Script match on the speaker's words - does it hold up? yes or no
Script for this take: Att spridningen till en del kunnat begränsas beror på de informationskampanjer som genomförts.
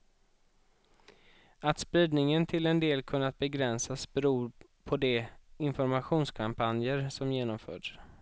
yes